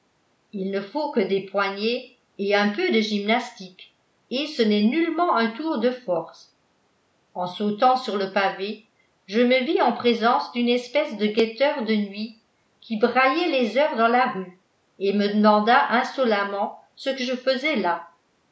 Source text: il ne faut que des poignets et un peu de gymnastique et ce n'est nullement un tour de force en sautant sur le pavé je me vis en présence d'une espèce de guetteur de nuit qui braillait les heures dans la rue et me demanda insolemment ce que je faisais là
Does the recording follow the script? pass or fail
pass